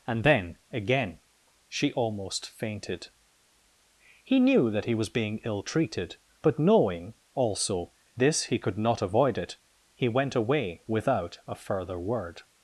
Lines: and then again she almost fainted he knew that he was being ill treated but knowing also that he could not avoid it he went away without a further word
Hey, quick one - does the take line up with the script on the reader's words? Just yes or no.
no